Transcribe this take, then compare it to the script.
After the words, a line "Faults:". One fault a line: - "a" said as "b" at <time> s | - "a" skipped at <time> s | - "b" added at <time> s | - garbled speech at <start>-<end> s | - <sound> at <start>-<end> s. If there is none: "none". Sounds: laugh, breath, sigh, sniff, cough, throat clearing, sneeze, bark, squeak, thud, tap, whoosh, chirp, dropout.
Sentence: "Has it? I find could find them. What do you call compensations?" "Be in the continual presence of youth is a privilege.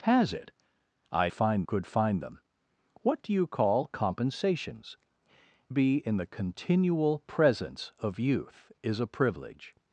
"Has it? I find could find them. What do you call compensations?" "Be in the continual presence of youth is a privilege.
Faults:
none